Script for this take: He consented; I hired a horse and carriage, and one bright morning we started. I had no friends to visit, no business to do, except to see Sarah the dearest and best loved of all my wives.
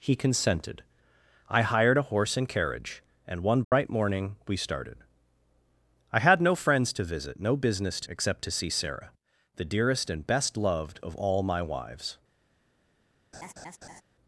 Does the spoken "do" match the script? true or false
false